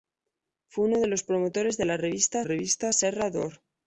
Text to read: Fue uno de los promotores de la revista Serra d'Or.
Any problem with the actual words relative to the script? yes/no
yes